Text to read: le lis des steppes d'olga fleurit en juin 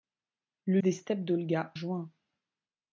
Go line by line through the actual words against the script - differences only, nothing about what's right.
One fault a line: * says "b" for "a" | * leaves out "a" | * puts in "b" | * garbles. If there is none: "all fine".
* leaves out "lis"
* leaves out "fleurit en"